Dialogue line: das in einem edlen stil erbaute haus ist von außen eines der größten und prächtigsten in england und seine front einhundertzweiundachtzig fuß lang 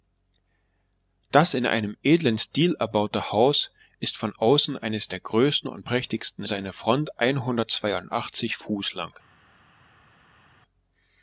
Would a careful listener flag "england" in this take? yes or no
yes